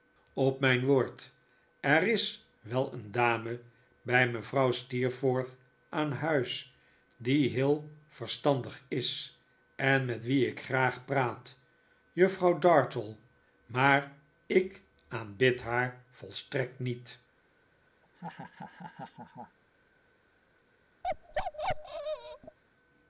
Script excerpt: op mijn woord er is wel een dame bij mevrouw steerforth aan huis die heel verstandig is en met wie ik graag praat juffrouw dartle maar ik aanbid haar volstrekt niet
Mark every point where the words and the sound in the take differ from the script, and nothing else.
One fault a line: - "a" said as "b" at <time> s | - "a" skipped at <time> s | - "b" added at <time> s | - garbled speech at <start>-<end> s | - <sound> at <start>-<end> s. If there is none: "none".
- laugh at 18.0-19.6 s
- bark at 21.0-22.6 s